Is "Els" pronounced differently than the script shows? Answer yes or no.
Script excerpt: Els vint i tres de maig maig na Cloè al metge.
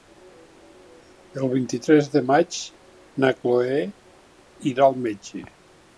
yes